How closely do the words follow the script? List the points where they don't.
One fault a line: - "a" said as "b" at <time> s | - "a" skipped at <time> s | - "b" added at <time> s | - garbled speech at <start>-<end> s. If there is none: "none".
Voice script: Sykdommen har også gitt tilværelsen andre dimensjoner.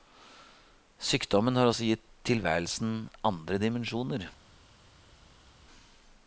none